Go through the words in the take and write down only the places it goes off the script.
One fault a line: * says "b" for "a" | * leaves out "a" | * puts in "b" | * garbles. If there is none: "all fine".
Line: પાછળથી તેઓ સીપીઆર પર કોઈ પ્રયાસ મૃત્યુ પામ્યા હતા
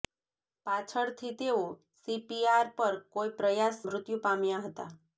all fine